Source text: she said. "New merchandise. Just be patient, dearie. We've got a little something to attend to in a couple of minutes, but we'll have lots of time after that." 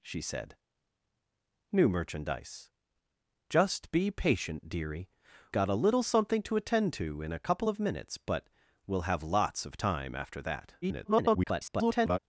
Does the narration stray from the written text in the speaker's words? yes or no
yes